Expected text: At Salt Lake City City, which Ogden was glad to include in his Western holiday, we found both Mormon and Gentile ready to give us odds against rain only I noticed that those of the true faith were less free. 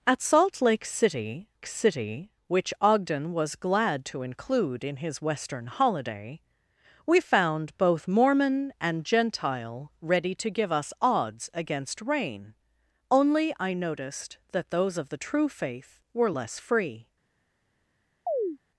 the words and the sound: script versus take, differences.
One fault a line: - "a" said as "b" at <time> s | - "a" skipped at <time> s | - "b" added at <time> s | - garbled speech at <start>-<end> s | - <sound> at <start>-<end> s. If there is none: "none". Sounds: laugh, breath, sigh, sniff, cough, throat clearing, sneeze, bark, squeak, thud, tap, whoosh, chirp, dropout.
- chirp at 18.3-18.6 s